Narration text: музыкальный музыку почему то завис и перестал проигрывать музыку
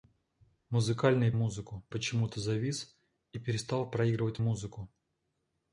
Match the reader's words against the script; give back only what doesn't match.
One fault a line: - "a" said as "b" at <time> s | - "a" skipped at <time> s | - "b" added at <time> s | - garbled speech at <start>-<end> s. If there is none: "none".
none